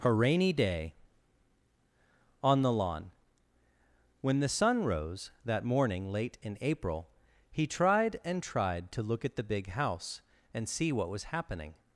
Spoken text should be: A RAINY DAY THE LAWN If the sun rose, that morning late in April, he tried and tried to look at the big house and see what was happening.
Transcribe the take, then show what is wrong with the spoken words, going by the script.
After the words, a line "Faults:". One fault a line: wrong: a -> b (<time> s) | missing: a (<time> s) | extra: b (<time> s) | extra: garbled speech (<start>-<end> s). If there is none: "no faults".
A RAINY DAY ON THE LAWN When the sun rose, that morning late in April, he tried and tried to look at the big house and see what was happening.
Faults:
extra: ON (2.4 s)
wrong: If -> When (4.2 s)